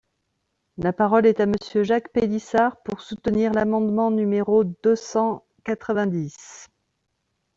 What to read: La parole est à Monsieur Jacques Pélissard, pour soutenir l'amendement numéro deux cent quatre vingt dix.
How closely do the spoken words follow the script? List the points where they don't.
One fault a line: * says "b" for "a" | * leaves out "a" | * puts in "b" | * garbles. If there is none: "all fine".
all fine